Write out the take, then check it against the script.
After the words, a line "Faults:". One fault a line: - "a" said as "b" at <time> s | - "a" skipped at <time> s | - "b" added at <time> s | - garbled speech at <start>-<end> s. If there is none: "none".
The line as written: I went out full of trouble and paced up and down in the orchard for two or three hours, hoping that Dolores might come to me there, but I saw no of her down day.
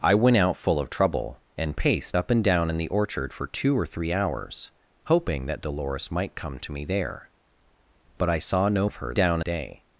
I went out full of trouble and paced up and down in the orchard for two or three hours, hoping that Dolores might come to me there, but I saw no of her down day.
Faults:
none